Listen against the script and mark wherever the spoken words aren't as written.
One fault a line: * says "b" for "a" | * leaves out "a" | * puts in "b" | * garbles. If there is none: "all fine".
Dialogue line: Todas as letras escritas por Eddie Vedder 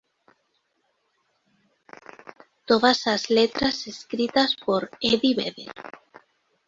all fine